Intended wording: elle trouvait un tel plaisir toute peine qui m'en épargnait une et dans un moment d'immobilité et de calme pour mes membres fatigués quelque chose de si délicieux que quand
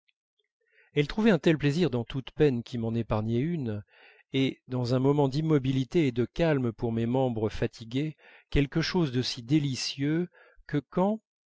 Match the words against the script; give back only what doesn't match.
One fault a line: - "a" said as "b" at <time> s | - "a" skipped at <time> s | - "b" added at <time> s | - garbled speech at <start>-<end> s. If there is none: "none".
- "dans" added at 1.9 s